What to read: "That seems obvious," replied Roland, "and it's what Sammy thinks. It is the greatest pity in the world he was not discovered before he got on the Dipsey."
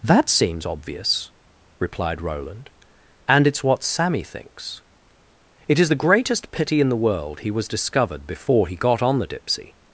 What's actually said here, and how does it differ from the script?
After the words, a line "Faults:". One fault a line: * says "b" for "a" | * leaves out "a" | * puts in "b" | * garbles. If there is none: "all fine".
"That seems obvious," replied Roland, "and it's what Sammy thinks. It is the greatest pity in the world he was discovered before he got on the Dipsey."
Faults:
* leaves out "not"